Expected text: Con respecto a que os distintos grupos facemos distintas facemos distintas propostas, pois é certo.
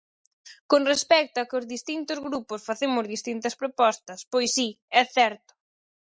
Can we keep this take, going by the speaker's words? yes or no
no